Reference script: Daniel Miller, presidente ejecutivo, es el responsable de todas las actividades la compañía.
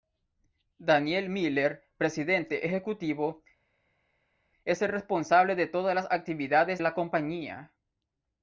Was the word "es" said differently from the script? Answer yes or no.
no